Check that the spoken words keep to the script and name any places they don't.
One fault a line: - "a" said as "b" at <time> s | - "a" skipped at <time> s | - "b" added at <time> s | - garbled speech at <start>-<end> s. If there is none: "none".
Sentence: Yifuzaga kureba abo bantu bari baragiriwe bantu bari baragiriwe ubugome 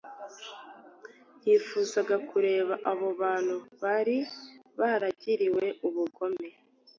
- "bantu bari baragiriwe" skipped at 5.6 s